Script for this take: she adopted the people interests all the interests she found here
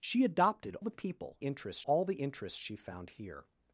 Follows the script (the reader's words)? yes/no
yes